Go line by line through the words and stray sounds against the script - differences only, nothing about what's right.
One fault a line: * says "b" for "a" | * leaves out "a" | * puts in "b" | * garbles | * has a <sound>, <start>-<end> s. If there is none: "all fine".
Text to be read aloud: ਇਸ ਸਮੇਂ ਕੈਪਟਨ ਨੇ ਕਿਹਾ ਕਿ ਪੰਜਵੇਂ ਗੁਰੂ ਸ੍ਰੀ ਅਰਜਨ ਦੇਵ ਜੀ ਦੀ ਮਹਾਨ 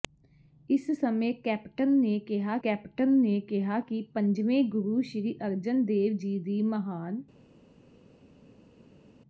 * puts in "ਕੈਪਟਨ ਨੇ ਕਿਹਾ"